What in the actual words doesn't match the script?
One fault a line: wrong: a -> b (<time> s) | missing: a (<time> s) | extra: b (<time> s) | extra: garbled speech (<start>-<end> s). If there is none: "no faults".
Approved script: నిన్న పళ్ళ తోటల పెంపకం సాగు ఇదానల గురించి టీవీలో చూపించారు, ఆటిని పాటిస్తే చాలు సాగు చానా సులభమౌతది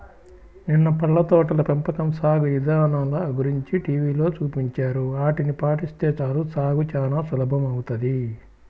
no faults